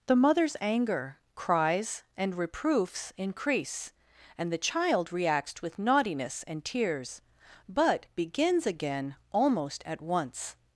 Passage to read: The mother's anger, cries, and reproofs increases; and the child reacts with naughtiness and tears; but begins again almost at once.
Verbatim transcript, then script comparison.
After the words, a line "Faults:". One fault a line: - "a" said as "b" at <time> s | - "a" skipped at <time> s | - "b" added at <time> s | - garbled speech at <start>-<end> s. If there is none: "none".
The mother's anger, cries, and reproofs increase; and the child reacts with naughtiness and tears; but begins again almost at once.
Faults:
- "increases" said as "increase" at 3.2 s